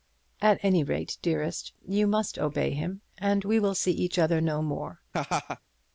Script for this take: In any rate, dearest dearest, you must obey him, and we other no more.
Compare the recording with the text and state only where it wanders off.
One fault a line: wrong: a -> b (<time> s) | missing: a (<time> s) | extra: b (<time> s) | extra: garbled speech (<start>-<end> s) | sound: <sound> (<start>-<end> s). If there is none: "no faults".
wrong: In -> At (0.4 s)
missing: dearest (1.7 s)
extra: will see each (3.6 s)
sound: laugh (5.1-5.6 s)